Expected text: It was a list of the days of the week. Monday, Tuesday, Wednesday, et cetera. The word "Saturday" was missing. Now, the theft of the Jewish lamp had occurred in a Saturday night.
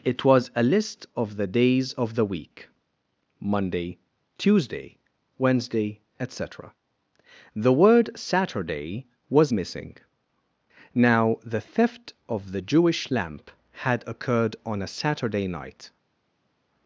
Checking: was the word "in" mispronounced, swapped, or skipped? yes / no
yes